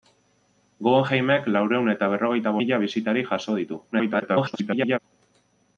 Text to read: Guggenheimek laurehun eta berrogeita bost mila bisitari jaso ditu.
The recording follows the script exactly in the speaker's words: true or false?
false